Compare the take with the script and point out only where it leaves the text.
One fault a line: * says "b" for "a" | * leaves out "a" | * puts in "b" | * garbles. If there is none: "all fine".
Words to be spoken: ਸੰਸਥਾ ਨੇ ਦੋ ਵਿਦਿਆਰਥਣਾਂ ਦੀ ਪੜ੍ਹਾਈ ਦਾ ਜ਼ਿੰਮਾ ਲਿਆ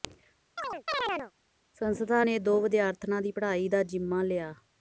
all fine